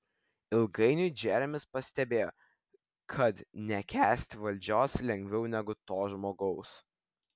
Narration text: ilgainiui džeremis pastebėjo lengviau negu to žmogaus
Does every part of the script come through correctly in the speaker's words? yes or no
no